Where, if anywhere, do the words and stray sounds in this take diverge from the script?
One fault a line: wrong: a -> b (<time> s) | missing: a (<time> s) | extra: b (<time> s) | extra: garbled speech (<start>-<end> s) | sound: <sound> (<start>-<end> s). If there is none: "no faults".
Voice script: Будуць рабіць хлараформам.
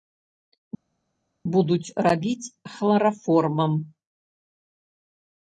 no faults